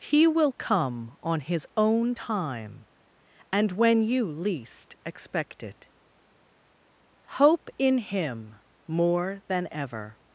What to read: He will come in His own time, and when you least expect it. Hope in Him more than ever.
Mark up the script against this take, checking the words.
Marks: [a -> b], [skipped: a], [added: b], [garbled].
He will come [in -> on] His own time, and when you least expect it. Hope in Him more than ever.